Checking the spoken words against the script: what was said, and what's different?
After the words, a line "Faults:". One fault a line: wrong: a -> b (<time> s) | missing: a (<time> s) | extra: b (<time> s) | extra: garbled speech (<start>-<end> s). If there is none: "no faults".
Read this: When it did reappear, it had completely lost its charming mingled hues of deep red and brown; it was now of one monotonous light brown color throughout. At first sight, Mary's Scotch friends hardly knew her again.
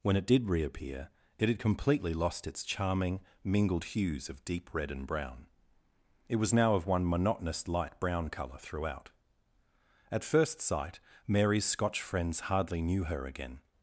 When it did reappear, it had completely lost its charming mingled hues of deep red and brown; it was now of one monotonous light brown color throughout. At first sight, Mary's Scotch friends hardly knew her again.
Faults:
no faults